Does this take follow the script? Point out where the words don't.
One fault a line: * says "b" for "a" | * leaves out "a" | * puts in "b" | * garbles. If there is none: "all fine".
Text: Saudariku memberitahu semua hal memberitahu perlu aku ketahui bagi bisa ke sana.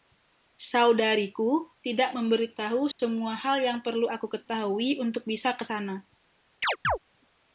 * puts in "tidak"
* says "yang" for "memberitahu"
* says "untuk" for "bagi"